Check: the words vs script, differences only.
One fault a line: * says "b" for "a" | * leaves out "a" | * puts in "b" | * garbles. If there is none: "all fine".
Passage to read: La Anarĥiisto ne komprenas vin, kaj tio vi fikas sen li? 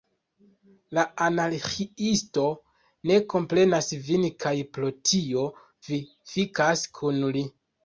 * puts in "pro"
* says "kun" for "sen"